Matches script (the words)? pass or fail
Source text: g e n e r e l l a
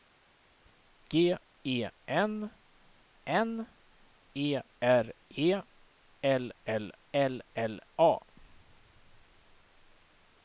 fail